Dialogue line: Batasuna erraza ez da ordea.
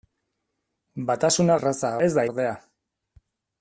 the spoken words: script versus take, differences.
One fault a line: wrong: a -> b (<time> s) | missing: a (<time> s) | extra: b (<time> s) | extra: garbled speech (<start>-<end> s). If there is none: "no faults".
no faults